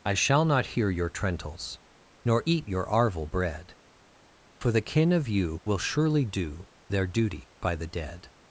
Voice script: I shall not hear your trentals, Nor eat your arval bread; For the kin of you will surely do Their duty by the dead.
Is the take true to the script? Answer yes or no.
yes